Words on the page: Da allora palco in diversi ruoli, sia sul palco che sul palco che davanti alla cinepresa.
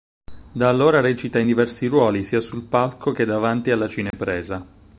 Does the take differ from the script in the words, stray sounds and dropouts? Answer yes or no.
yes